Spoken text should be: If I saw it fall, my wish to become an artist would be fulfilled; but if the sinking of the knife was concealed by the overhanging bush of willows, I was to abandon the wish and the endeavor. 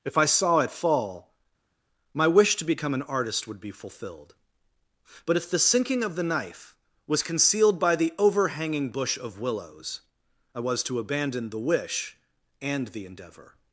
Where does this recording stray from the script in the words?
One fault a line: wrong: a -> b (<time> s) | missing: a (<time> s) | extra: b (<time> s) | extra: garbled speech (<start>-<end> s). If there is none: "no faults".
no faults